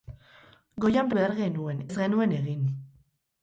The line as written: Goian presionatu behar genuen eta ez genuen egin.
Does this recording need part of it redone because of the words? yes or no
yes